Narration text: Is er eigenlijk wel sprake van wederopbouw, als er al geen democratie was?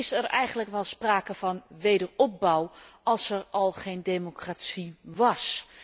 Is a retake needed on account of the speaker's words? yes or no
no